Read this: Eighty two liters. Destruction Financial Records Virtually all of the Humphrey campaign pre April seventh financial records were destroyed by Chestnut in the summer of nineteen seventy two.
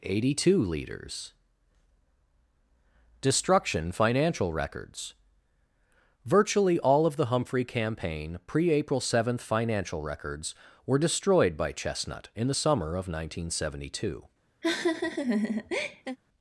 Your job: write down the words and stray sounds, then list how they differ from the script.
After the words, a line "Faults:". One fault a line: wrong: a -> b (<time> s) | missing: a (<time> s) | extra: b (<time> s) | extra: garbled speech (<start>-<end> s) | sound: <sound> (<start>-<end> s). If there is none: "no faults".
Eighty two liters. Destruction Financial Records Virtually all of the Humphrey campaign pre April seventh financial records were destroyed by Chestnut in the summer of nineteen seventy two.
Faults:
sound: laugh (14.6-16.2 s)